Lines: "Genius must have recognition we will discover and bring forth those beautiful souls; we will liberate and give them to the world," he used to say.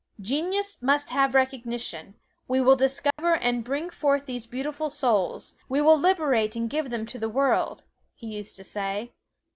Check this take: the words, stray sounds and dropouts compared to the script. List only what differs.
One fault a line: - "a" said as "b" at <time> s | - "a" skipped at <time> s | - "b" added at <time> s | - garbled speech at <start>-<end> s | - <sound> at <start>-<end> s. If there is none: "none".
- dropout at 3.1-3.2 s
- "those" said as "these" at 4.2 s